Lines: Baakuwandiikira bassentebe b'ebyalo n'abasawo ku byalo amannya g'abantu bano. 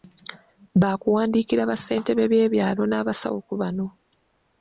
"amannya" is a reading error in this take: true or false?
true